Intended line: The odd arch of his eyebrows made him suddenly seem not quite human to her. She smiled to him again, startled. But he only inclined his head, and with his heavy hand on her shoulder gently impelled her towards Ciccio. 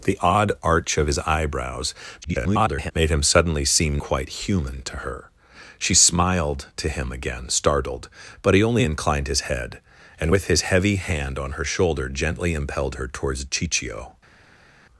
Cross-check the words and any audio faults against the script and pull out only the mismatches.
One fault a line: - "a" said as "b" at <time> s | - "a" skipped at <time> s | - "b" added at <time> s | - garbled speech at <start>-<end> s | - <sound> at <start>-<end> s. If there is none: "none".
- garbled speech at 2.2-2.9 s
- "not" skipped at 4.0 s